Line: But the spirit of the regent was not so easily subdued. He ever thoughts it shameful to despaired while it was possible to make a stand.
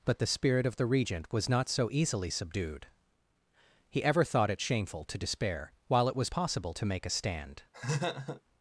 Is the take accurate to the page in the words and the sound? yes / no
no